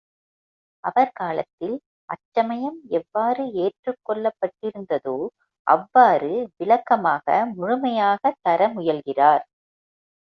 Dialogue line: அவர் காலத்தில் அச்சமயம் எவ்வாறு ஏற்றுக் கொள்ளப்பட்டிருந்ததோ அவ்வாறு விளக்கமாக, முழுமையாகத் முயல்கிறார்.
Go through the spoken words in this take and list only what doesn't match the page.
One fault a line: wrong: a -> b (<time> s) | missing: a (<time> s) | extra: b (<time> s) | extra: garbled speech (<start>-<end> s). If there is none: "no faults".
extra: தர (8.4 s)